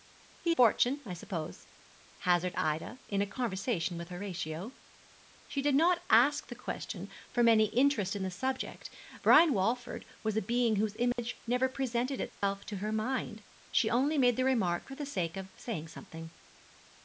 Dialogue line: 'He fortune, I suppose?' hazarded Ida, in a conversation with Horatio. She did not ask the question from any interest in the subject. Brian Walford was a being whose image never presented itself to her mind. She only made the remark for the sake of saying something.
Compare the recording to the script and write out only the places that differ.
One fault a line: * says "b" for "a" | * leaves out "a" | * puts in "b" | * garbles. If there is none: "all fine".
all fine